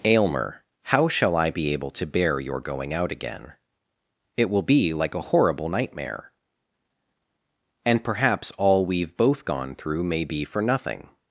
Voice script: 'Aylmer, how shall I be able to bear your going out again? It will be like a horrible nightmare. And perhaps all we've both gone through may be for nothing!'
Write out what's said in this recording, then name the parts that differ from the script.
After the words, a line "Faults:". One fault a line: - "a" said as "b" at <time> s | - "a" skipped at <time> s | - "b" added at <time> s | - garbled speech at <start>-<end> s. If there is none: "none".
'Aylmer, how shall I be able to bear your going out again? It will be like a horrible nightmare. And perhaps all we've both gone through may be for nothing!'
Faults:
none